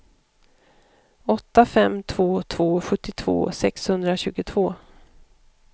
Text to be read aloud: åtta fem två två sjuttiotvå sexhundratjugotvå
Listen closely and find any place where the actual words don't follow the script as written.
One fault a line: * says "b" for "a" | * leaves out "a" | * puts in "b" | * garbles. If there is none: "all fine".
all fine